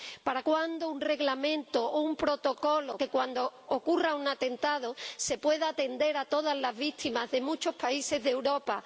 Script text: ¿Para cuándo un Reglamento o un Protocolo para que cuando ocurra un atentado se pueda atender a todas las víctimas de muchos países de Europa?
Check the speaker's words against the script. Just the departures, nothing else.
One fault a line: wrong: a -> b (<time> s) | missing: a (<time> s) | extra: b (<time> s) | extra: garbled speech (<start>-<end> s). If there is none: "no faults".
missing: para (3.0 s)